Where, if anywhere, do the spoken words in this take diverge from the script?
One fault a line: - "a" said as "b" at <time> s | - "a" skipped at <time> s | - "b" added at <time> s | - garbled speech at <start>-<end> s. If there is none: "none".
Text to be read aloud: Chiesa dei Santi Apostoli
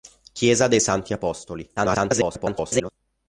- garbled speech at 1.8-2.9 s